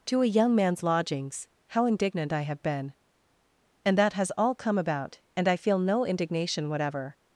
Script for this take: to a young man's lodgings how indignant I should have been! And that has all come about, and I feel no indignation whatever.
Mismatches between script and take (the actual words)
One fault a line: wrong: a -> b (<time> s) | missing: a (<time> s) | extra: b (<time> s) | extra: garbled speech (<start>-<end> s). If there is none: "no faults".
missing: should (2.4 s)